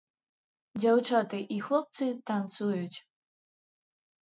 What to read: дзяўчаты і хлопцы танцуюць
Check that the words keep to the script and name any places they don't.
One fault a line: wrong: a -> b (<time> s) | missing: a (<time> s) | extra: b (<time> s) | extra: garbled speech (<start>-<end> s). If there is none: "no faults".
no faults